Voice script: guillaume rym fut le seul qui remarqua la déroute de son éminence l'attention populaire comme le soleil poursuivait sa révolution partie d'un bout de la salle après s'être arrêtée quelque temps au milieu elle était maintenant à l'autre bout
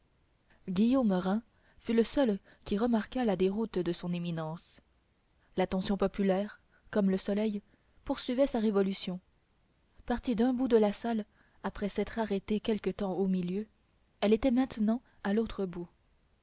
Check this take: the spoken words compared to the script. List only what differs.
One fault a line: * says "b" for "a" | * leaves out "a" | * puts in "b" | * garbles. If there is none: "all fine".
all fine